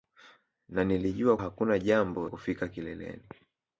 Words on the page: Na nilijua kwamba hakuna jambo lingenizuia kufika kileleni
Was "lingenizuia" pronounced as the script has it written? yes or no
no